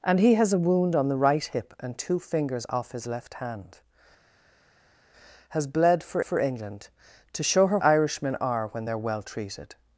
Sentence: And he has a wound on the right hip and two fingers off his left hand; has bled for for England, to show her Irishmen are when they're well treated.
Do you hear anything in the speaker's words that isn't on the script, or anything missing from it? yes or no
no